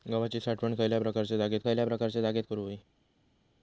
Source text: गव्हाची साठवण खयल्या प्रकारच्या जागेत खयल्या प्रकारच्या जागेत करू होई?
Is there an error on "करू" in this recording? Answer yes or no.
no